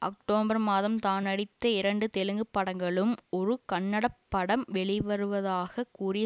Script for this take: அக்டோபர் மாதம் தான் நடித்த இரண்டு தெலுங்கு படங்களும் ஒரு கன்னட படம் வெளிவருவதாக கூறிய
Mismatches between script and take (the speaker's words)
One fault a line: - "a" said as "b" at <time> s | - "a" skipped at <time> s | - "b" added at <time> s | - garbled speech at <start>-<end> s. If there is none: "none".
none